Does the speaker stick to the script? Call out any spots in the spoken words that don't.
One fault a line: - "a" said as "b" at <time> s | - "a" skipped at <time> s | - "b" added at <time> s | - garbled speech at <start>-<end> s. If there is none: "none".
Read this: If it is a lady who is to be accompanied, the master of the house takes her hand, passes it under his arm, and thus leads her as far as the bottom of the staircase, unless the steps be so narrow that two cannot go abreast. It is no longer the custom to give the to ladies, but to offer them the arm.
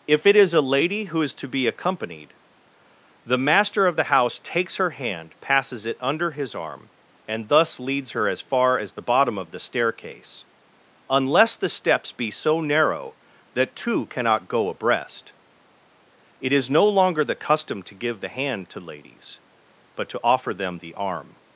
- "hand" added at 18.3 s